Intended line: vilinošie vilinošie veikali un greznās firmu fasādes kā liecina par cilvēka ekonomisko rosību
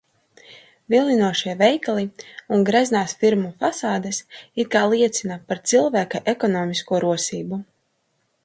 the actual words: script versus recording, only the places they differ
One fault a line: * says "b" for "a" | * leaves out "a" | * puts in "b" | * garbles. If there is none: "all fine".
* leaves out "vilinošie"
* puts in "it"